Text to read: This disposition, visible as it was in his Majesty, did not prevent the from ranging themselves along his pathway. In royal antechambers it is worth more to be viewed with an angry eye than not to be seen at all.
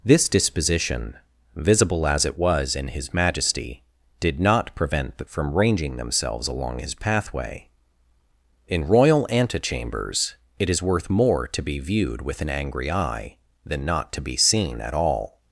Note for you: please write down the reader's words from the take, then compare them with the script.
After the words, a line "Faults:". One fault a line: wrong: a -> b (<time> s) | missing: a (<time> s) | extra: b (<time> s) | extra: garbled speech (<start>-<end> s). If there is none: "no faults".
This disposition, visible as it was in his Majesty, did not prevent the from ranging themselves along his pathway. In royal antechambers it is worth more to be viewed with an angry eye than not to be seen at all.
Faults:
no faults